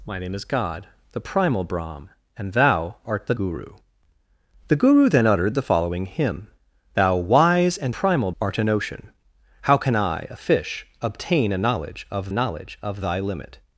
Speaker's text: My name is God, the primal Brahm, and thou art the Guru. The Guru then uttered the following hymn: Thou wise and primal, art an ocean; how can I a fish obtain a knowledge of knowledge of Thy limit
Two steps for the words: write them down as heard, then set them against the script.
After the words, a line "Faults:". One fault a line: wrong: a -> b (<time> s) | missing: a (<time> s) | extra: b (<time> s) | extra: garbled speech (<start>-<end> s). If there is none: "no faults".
My name is God, the primal Brahm, and thou art the Guru. The Guru then uttered the following hymn: Thou wise and primal, art an ocean; how can I a fish obtain a knowledge of knowledge of Thy limit
Faults:
no faults